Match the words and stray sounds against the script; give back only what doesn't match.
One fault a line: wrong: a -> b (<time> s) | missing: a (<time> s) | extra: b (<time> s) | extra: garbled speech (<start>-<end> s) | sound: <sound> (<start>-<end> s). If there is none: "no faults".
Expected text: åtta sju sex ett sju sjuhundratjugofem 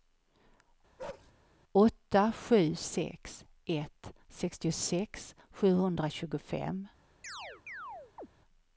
sound: bark (1.0-1.3 s)
wrong: sju -> sextiosex (4.3 s)
sound: chirp (7.2-8.3 s)